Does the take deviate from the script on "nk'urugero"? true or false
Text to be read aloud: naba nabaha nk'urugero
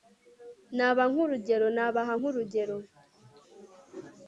false